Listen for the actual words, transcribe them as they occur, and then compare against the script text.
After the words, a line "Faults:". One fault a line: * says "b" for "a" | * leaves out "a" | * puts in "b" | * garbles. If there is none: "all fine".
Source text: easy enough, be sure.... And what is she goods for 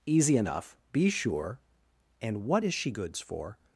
easy enough, be sure.... And what is she goods for
Faults:
all fine